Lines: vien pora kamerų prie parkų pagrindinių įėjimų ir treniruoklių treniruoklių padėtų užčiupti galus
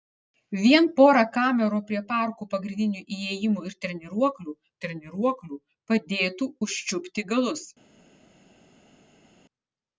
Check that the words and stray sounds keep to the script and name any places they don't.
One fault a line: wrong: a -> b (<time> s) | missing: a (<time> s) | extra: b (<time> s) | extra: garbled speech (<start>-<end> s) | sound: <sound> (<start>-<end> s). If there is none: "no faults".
no faults